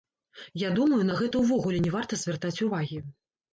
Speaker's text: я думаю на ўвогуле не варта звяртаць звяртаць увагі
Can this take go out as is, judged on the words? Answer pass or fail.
fail